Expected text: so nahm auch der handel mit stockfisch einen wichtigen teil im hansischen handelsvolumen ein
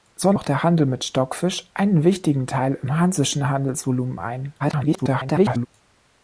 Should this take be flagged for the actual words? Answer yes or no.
yes